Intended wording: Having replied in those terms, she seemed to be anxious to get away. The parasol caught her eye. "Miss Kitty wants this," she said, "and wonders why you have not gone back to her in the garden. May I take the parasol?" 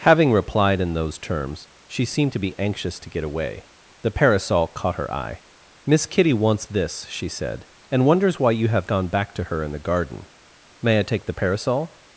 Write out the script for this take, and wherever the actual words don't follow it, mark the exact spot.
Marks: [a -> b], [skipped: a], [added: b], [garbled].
Having replied in those terms, she seemed to be anxious to get away. The parasol caught her eye. "Miss Kitty wants this," she said, "and wonders why you have [skipped: not] gone back to her in the garden. May I take the parasol?"